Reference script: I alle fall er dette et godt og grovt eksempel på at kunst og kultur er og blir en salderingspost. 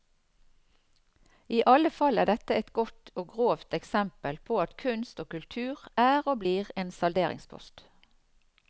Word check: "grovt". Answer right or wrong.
right